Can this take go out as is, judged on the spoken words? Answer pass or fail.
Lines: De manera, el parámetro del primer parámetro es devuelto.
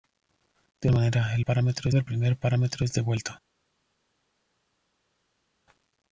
pass